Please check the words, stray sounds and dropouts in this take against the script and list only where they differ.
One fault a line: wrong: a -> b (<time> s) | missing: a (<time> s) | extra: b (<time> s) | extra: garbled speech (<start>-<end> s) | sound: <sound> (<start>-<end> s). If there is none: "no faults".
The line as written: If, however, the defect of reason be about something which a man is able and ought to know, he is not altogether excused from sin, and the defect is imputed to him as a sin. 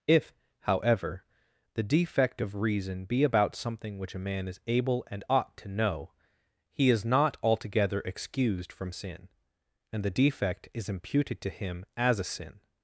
no faults